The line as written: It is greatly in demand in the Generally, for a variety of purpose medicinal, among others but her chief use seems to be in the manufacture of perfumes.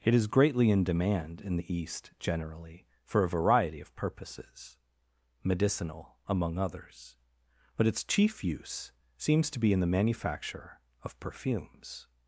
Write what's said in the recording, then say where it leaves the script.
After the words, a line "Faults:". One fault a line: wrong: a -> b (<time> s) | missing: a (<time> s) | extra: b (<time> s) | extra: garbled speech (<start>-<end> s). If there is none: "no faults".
It is greatly in demand in the East generally, for a variety of purposes medicinal, among others but its chief use seems to be in the manufacture of perfumes.
Faults:
extra: East (1.7 s)
wrong: purpose -> purposes (3.9 s)
wrong: her -> its (7.9 s)